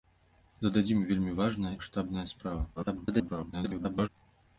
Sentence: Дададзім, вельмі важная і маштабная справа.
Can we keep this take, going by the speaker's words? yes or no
no